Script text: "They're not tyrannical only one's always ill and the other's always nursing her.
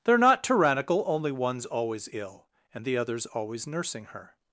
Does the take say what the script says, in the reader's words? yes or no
yes